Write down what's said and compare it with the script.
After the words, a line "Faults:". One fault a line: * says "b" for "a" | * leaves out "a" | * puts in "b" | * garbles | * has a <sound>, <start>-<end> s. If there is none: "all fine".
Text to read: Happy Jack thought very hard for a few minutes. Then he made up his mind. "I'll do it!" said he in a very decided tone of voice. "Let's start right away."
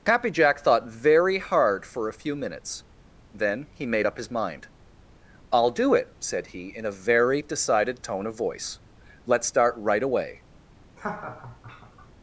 Happy Jack thought very hard for a few minutes. Then he made up his mind. "I'll do it!" said he in a very decided tone of voice. "Let's start right away."
Faults:
* has a laugh, 11.0-12.1 s